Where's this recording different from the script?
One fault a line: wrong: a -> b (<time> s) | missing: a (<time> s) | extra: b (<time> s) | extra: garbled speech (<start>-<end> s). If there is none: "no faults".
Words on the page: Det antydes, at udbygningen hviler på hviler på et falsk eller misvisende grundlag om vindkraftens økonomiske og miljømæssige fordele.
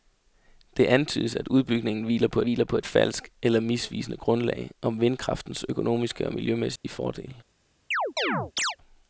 no faults